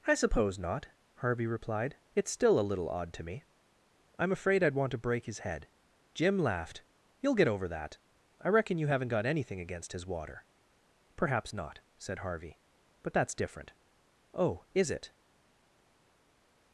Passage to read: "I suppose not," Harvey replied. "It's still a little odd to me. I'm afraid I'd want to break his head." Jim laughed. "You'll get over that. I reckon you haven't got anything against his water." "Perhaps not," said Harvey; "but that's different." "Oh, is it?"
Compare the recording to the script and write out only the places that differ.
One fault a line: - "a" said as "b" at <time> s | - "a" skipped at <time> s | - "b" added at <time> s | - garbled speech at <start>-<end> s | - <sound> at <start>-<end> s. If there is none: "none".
none